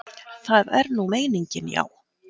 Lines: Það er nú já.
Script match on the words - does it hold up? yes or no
no